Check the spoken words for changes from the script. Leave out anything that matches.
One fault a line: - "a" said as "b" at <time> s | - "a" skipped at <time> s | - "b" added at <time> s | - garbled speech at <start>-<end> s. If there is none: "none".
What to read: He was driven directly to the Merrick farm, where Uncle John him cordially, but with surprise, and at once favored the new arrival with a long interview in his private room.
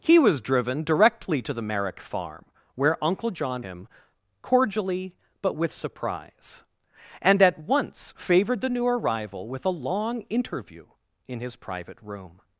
none